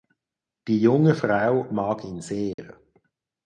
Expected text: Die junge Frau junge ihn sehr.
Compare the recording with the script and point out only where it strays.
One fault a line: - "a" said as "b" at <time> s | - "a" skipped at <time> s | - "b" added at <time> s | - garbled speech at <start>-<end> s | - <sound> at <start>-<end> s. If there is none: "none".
- "junge" said as "mag" at 1.7 s
- dropout at 2.5-2.6 s